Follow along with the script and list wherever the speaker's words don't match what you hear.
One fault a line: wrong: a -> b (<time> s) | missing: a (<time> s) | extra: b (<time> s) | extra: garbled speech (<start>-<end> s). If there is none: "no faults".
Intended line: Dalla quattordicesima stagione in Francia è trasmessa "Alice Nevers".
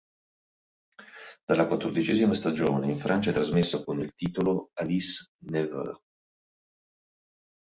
extra: con il titolo (3.8 s)